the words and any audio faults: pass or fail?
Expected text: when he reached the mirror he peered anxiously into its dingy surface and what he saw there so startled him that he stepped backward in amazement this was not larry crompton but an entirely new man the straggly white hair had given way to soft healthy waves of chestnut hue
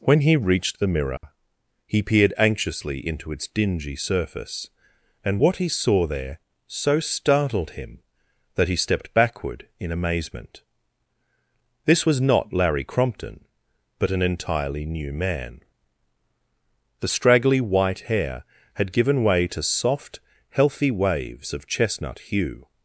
fail